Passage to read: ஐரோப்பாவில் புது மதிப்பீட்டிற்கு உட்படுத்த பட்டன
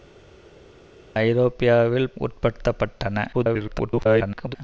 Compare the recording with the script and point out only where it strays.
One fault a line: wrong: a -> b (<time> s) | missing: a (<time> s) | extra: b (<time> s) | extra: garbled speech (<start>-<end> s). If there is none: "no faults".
missing: புது மதிப்பீட்டிற்கு (2.1 s)
extra: garbled speech (3.3-4.6 s)